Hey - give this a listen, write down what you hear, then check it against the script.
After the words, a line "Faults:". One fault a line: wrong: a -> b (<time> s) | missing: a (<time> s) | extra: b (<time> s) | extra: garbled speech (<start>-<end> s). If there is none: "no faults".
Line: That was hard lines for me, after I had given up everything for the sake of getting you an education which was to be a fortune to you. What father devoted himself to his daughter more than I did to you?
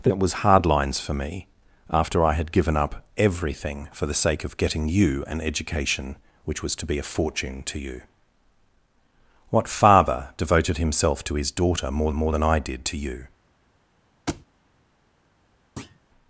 That was hard lines for me, after I had given up everything for the sake of getting you an education which was to be a fortune to you. What father devoted himself to his daughter more more than I did to you?
Faults:
extra: more (12.1 s)